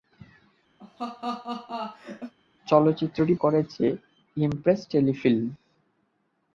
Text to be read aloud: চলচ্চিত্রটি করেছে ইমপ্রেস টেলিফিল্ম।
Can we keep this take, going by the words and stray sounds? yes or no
no